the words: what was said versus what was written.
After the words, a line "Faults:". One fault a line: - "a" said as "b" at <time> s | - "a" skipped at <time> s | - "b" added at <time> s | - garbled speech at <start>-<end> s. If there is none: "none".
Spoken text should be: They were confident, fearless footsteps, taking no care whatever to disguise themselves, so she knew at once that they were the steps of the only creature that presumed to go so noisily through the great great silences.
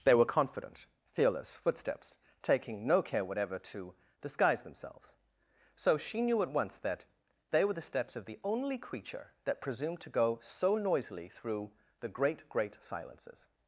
They were confident, fearless footsteps, taking no care whatever to disguise themselves, so she knew at once that they were the steps of the only creature that presumed to go so noisily through the great great silences.
Faults:
none